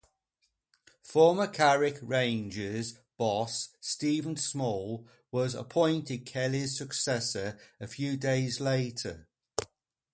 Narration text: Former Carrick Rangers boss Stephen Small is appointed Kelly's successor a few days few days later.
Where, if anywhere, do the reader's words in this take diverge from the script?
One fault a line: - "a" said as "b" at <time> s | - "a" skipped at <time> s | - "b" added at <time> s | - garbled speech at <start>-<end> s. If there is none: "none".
- "is" said as "was" at 5.3 s
- "few days" skipped at 8.6 s